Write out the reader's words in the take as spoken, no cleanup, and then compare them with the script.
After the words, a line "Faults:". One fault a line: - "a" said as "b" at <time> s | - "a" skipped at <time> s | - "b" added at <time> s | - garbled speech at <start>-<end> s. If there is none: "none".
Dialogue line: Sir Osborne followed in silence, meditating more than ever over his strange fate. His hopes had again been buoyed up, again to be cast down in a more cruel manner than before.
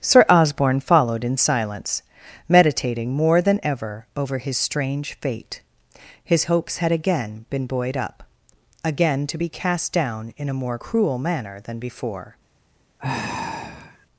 Sir Osborne followed in silence, meditating more than ever over his strange fate. His hopes had again been buoyed up, again to be cast down in a more cruel manner than before.
Faults:
none